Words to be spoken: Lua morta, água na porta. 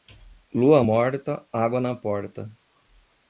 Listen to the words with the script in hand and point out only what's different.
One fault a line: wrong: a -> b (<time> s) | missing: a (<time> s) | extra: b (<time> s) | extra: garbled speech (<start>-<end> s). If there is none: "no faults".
no faults